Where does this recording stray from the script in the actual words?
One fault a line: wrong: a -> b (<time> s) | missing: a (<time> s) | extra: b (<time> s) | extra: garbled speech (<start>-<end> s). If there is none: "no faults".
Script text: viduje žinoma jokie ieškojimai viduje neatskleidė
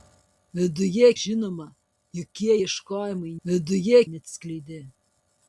no faults